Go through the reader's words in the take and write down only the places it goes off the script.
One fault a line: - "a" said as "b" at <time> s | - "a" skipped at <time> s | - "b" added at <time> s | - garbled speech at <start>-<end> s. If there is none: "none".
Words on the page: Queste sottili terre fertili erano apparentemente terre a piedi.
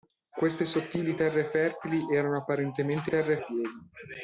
none